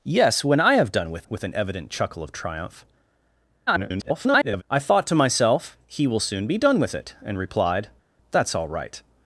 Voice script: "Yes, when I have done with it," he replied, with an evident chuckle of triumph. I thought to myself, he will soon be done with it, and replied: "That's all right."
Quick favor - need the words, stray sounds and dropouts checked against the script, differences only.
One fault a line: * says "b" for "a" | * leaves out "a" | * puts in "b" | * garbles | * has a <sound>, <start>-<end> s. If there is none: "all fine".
* leaves out "it he replied"
* garbles